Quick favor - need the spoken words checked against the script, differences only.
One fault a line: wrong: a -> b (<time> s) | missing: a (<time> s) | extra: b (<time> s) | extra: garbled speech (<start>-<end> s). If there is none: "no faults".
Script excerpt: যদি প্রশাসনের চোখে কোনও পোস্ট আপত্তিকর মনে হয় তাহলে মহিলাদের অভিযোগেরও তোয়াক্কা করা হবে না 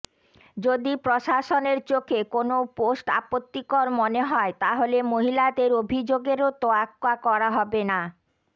no faults